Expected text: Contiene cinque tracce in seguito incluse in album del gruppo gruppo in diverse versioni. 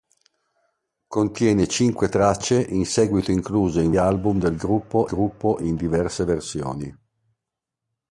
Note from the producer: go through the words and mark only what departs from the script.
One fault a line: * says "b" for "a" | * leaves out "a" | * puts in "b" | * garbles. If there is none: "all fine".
all fine